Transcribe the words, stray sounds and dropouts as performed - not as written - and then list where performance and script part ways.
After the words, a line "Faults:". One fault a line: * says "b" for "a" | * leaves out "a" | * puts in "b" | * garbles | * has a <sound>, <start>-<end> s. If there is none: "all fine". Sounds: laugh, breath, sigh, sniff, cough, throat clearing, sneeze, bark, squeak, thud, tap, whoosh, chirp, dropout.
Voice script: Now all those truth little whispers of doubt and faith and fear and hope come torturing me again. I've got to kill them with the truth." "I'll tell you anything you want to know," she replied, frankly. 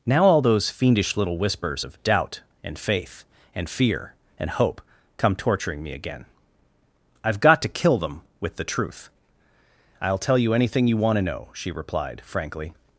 Now all those fiendish little whispers of doubt and faith and fear and hope come torturing me again. I've got to kill them with the truth." "I'll tell you anything you want to know," she replied, frankly.
Faults:
* says "fiendish" for "truth"